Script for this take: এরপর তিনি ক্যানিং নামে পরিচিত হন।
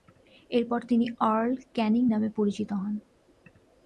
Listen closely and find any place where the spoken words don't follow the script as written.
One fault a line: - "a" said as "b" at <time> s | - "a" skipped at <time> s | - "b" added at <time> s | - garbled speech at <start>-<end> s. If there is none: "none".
- "আর্ল" added at 1.3 s